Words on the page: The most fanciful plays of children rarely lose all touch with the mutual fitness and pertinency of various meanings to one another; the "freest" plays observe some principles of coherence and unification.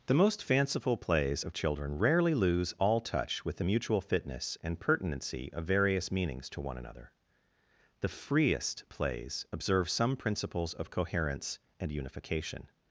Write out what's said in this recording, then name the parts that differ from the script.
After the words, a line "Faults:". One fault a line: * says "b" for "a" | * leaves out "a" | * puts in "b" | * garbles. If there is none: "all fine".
The most fanciful plays of children rarely lose all touch with the mutual fitness and pertinency of various meanings to one another; the "freest" plays observe some principles of coherence and unification.
Faults:
all fine